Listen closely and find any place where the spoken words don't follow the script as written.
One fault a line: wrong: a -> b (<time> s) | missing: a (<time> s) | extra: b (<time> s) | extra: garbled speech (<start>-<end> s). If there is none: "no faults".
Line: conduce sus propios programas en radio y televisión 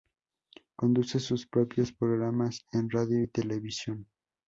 no faults